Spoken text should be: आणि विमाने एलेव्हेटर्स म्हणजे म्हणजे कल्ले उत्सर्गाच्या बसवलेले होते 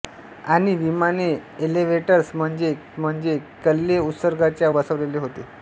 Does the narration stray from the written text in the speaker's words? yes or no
no